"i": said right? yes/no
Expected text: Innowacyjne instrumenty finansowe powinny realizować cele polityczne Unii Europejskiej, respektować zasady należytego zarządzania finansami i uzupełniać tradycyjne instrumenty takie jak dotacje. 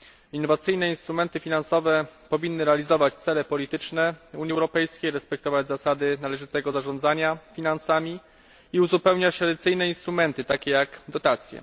yes